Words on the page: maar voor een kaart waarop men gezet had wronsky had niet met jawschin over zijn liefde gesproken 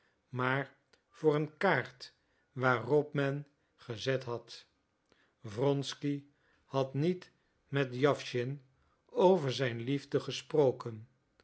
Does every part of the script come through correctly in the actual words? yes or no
yes